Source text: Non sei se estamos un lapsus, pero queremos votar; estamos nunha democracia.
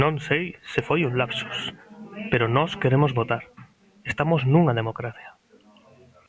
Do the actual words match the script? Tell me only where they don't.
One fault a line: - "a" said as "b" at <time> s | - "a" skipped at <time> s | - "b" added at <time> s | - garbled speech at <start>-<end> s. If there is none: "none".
- "estamos" said as "foi" at 0.8 s
- "nós" added at 2.4 s